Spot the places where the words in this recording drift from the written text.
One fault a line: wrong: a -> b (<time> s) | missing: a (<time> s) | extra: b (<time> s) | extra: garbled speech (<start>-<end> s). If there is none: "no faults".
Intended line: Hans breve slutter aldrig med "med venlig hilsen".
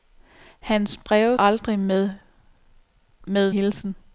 missing: slutter (1.4 s)
missing: venlig (3.5 s)